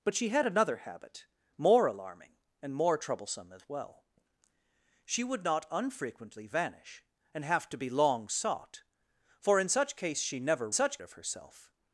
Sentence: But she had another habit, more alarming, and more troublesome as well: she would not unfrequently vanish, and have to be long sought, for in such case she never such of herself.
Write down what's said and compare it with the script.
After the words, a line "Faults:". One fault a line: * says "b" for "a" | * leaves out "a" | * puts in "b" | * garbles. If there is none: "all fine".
But she had another habit, more alarming, and more troublesome as well: she would not unfrequently vanish, and have to be long sought, for in such case she never such of herself.
Faults:
all fine